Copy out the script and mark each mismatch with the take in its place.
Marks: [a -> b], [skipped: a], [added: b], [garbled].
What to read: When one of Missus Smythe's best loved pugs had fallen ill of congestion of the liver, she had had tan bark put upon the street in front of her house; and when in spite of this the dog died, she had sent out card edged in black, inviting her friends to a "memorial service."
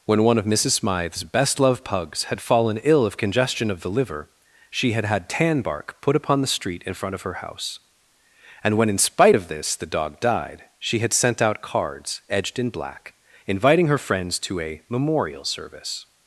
When one of Missus Smythe's best loved pugs had fallen ill of congestion of the liver, she had had tan bark put upon the street in front of her house; and when in spite of this the dog died, she had sent out [card -> cards] edged in black, inviting her friends to a "memorial service."